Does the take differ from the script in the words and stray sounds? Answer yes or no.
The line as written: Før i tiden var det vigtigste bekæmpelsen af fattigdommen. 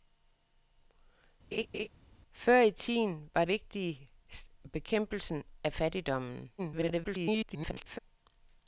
yes